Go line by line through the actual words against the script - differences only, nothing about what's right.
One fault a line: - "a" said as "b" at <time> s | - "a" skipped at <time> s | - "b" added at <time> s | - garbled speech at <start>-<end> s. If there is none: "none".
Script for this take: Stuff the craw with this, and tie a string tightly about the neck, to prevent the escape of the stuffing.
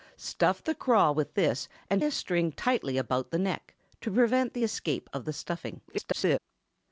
- "tie" skipped at 2.0 s
- garbled speech at 5.9-6.4 s